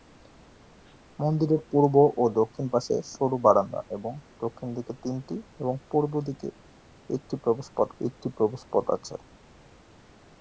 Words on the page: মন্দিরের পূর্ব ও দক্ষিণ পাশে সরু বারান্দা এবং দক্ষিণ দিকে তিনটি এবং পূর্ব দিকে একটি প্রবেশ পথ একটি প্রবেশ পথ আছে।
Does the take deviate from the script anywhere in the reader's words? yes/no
no